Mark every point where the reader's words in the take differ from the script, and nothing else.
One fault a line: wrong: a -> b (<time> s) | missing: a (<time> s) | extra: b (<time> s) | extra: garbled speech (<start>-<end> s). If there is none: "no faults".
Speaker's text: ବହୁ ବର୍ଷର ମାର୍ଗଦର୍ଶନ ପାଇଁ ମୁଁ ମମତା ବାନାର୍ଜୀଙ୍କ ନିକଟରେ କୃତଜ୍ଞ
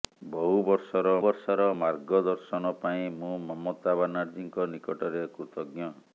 extra: ବର୍ଷର (1.2 s)